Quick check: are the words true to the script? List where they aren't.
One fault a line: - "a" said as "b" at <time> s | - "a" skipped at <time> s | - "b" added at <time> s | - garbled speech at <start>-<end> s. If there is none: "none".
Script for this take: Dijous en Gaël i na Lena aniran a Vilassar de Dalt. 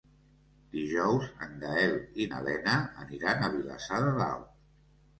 none